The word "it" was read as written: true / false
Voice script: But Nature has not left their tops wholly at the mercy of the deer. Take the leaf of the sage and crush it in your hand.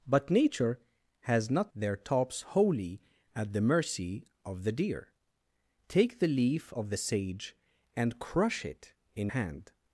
true